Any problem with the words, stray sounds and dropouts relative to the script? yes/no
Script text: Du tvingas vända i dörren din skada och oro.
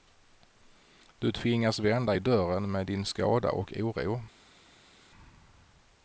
yes